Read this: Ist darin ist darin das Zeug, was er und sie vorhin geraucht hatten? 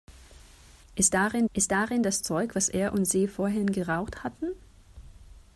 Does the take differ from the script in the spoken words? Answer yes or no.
no